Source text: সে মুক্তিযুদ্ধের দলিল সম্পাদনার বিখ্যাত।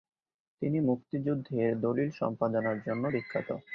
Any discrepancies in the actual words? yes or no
yes